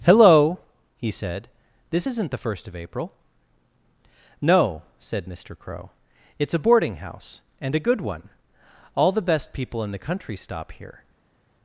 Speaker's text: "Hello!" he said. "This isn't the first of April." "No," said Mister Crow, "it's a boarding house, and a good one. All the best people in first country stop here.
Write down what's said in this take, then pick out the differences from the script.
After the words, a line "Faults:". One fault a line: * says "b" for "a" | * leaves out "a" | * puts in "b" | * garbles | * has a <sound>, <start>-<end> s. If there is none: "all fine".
"Hello!" he said. "This isn't the first of April." "No," said Mister Crow, "it's a boarding house, and a good one. All the best people in the country stop here.
Faults:
* says "the" for "first"